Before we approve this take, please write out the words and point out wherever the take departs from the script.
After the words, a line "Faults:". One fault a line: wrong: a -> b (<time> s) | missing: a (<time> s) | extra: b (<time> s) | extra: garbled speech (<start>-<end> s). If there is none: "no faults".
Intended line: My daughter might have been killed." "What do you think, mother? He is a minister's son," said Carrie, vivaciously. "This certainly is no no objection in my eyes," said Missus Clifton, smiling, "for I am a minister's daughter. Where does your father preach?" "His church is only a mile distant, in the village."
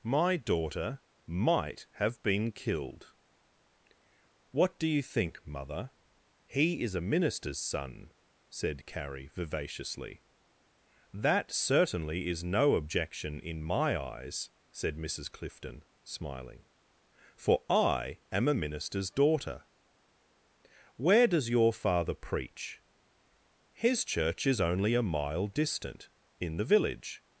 My daughter might have been killed." "What do you think, mother? He is a minister's son," said Carrie, vivaciously. "That certainly is no objection in my eyes," said Missus Clifton, smiling, "for I am a minister's daughter. Where does your father preach?" "His church is only a mile distant, in the village."
Faults:
wrong: This -> That (11.1 s)
missing: no (12.7 s)